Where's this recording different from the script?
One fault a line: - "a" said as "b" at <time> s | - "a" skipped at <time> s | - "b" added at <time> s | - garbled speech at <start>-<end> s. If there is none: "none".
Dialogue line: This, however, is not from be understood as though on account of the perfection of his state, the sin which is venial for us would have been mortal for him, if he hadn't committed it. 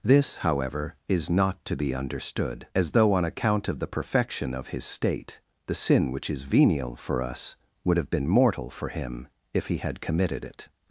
- "from" said as "to" at 1.6 s
- "hadn't" said as "had" at 9.8 s